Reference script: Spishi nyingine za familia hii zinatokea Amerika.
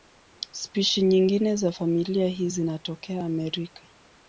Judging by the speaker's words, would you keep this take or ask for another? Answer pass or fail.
pass